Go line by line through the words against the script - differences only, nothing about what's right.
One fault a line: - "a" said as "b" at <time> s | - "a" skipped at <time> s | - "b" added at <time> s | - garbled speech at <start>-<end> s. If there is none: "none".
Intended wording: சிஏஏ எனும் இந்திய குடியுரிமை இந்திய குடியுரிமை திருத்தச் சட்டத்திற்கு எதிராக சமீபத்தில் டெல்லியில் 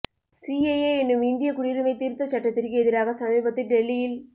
- "இந்திய குடியுரிமை" skipped at 1.9 s